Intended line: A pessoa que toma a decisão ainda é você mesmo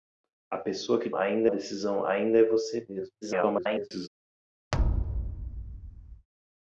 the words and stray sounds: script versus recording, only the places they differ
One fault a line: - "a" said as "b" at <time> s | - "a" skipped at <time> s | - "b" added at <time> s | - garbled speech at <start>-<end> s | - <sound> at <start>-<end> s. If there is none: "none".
- "toma" said as "ainda" at 1.1 s
- garbled speech at 3.2-4.1 s
- thud at 4.7-6.3 s